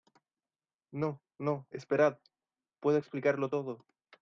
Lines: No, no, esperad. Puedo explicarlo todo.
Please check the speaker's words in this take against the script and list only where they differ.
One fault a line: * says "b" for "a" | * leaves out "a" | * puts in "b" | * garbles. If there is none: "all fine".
all fine